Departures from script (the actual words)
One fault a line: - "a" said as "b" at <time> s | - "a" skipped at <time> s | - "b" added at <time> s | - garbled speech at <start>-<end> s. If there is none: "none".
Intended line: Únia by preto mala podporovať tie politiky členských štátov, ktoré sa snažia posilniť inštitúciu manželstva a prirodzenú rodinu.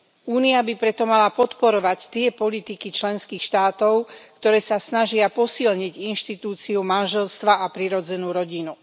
none